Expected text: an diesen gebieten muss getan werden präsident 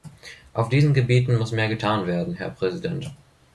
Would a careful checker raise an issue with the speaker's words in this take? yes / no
yes